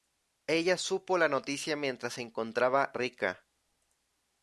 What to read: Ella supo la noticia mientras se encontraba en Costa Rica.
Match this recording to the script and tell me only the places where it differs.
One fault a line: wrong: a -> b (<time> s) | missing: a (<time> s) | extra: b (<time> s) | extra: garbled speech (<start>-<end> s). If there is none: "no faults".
missing: en Costa (2.9 s)